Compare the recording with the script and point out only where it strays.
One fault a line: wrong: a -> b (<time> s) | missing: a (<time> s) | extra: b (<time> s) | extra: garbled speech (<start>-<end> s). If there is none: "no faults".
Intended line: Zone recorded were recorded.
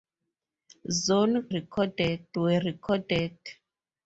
no faults